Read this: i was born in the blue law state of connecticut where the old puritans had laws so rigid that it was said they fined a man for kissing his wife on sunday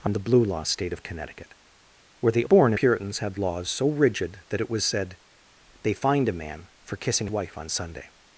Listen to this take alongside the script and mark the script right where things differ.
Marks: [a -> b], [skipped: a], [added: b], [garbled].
i [skipped: was born] in the blue law state of connecticut where the [old -> born] puritans had laws so rigid that it was said they fined a man for kissing [skipped: his] wife on sunday